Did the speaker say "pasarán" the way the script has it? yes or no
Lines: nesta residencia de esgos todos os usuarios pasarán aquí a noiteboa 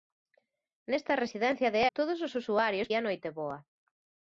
no